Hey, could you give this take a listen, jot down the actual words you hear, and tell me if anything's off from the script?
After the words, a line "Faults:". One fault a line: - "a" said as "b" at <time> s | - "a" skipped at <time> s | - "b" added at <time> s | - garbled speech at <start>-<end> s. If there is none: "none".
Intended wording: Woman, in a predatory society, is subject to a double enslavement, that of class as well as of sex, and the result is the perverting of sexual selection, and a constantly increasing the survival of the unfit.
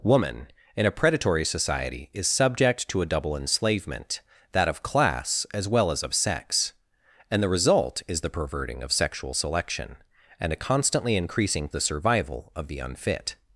Woman, in a predatory society, is subject to a double enslavement, that of class as well as of sex, and the result is the perverting of sexual selection, and a constantly increasing the survival of the unfit.
Faults:
none